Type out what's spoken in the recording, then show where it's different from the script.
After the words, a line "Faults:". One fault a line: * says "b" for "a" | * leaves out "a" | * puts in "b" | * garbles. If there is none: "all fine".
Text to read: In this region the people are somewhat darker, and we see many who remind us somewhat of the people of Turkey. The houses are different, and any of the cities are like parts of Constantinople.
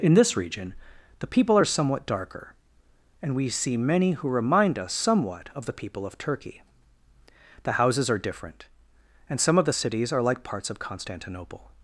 In this region the people are somewhat darker, and we see many who remind us somewhat of the people of Turkey. The houses are different, and some of the cities are like parts of Constantinople.
Faults:
* says "some" for "any"